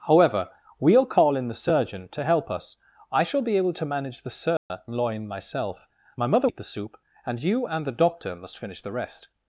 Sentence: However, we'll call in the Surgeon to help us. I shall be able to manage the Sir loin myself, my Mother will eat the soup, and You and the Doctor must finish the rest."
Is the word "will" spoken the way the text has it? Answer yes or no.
no